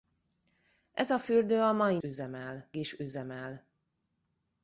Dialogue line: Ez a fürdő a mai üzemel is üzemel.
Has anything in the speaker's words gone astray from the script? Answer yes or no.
no